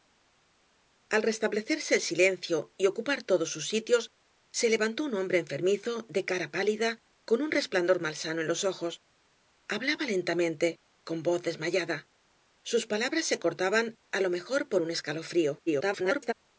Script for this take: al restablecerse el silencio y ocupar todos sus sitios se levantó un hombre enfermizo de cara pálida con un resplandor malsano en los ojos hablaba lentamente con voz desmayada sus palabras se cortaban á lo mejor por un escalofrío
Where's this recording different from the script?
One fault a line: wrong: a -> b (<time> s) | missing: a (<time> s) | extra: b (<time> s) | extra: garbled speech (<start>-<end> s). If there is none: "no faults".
extra: garbled speech (15.7-16.3 s)